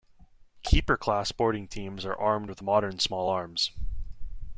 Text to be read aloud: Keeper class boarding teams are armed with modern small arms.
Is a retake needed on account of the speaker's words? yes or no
no